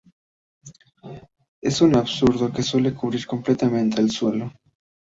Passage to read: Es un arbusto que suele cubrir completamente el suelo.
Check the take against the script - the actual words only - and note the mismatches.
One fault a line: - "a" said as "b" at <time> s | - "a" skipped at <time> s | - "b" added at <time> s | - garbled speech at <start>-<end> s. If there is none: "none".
none